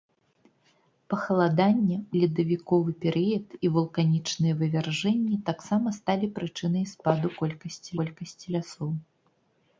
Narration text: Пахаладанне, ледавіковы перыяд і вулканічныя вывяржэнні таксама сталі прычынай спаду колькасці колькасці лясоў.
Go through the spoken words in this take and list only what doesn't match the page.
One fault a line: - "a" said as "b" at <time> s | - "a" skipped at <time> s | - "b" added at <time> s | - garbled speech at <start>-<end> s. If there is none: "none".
none